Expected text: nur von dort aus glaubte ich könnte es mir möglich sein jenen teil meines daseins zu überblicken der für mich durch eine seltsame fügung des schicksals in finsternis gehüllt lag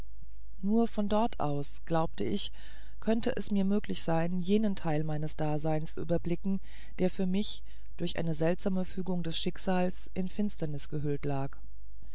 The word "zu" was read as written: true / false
false